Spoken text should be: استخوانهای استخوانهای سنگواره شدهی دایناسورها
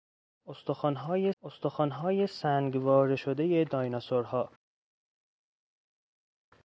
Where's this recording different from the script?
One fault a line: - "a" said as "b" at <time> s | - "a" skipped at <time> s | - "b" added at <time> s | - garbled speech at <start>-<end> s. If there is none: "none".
none